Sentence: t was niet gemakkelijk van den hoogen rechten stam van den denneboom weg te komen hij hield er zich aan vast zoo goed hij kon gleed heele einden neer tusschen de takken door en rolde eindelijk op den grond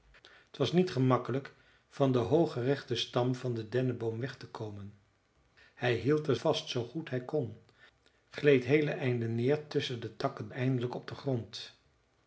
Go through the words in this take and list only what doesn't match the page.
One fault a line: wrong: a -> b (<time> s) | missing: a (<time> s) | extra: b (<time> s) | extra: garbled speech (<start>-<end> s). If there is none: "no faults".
missing: zich aan (6.3 s)
missing: door en rolde (10.5 s)